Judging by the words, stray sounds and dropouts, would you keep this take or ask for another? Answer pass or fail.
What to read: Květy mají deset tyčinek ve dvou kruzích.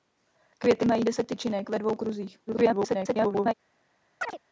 fail